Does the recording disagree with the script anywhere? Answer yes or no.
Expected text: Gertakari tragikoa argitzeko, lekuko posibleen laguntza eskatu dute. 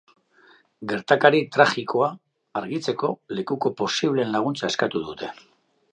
no